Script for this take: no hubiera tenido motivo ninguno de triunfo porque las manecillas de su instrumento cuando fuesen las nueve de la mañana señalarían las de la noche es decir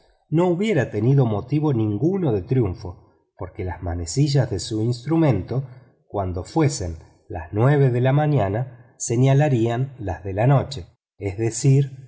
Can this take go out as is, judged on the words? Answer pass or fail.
pass